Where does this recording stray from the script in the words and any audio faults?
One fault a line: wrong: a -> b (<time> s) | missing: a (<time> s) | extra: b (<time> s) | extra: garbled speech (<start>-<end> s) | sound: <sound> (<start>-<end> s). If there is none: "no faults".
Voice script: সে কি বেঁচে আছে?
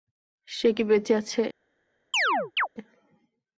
sound: chirp (2.1-2.7 s)